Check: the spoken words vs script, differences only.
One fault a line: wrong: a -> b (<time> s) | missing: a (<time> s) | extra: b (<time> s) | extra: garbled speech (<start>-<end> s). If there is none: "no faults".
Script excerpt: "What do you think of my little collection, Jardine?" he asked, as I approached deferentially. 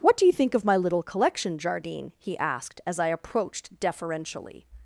no faults